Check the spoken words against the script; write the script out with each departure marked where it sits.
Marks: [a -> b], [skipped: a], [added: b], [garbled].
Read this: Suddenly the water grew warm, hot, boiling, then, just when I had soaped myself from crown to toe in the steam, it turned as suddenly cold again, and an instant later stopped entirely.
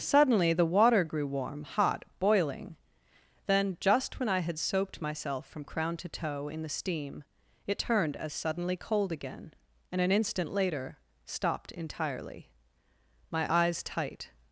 Suddenly the water grew warm, hot, boiling, then, just when I had soaped myself from crown to toe in the steam, it turned as suddenly cold again, and an instant later stopped entirely. [added: My eyes tight]